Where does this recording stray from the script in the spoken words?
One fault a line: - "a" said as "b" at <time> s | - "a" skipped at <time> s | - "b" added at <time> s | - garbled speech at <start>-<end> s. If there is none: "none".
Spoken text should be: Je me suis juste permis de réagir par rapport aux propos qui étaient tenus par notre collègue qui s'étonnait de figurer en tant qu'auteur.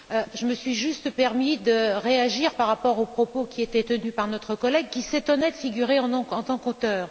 none